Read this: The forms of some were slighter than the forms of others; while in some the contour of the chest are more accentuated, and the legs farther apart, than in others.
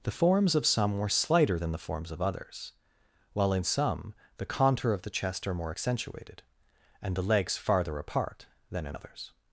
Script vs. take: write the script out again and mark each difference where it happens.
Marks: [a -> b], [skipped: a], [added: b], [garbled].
The forms of some were slighter than the forms of others; while in some the contour of the chest are more accentuated, and the legs farther apart, than in others.